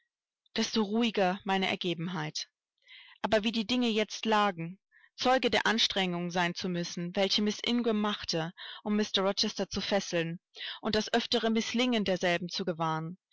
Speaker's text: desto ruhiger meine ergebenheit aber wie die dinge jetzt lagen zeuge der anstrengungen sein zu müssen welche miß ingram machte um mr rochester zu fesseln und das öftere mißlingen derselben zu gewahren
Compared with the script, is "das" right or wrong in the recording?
right